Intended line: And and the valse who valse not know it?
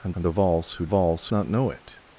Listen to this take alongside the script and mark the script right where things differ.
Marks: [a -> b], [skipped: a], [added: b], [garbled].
And and the valse who valse not know it?